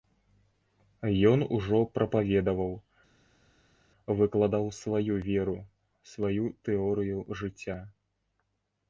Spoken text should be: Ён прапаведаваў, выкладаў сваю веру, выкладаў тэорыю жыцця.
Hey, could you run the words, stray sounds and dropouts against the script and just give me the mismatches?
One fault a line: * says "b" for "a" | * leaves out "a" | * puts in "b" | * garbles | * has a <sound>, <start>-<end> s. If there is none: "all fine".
* puts in "ужо"
* says "сваю" for "выкладаў"